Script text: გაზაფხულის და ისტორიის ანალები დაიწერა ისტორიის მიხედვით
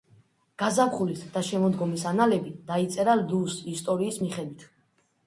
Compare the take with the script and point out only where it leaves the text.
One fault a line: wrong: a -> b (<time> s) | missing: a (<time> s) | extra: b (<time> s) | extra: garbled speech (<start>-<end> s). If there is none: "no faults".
wrong: ისტორიის -> შემოდგომის (1.5 s)
extra: ლუს (3.2 s)